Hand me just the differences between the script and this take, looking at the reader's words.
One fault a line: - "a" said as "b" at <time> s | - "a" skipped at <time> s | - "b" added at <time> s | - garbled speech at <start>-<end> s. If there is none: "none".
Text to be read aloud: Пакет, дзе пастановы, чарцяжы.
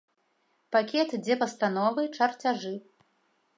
none